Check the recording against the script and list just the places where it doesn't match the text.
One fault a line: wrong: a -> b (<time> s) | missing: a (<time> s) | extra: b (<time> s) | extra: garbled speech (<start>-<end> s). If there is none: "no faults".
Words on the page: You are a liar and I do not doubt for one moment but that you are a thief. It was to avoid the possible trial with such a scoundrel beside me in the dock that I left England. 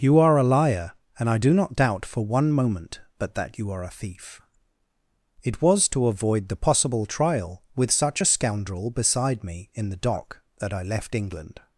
no faults